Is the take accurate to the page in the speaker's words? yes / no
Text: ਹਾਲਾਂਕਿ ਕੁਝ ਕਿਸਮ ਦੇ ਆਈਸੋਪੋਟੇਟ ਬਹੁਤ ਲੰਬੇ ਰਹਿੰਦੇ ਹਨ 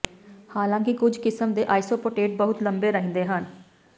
yes